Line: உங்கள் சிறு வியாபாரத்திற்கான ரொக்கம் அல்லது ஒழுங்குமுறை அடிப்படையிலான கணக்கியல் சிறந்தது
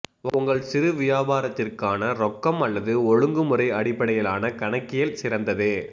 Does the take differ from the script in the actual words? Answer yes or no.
no